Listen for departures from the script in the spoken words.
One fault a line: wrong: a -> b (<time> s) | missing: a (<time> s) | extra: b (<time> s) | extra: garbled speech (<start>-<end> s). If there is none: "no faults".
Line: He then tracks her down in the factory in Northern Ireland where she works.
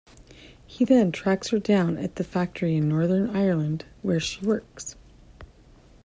wrong: in -> at (2.0 s)